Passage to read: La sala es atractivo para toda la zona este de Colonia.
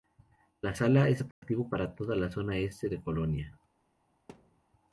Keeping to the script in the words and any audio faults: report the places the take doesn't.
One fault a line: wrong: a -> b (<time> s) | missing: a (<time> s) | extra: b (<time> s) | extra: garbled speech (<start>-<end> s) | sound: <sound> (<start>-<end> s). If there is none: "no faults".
sound: dropout (1.3-1.4 s)
sound: thud (4.3-4.6 s)